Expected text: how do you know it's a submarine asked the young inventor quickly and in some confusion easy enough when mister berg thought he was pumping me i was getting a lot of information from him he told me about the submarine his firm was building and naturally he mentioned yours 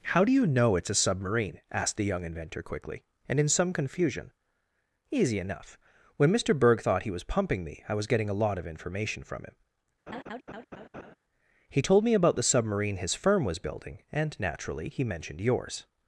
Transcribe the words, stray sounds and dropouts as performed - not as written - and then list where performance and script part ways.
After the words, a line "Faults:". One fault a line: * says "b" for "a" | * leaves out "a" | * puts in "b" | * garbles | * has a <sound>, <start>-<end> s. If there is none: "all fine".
how do you know it's a submarine asked the young inventor quickly and in some confusion easy enough when mister berg thought he was pumping me i was getting a lot of information from him he told me about the submarine his firm was building and naturally he mentioned yours
Faults:
* has a laugh, 10.1-11.2 s